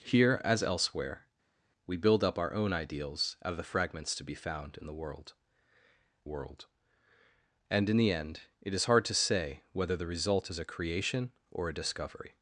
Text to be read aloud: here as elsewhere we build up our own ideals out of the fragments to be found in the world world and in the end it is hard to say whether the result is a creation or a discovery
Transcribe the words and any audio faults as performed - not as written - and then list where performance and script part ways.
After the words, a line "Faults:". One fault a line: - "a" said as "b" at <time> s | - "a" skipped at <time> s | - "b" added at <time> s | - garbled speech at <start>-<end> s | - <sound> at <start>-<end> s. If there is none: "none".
here as elsewhere we build up our own ideals out of the fragments to be found in the world world and in the end it is hard to say whether the result is a creation or a discovery
Faults:
none